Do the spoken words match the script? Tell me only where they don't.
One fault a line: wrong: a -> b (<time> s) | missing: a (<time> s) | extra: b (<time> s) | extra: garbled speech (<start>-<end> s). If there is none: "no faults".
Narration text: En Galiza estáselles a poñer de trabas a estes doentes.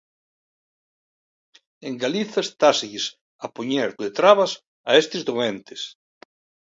no faults